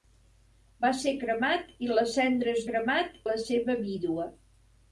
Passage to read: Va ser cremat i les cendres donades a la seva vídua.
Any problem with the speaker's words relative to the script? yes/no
yes